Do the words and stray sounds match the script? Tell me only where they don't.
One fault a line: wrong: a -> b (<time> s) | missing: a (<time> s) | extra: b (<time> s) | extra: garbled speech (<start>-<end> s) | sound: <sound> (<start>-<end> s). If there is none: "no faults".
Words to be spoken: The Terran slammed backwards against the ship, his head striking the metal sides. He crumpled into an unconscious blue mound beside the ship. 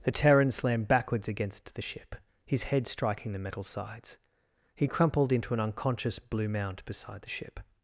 no faults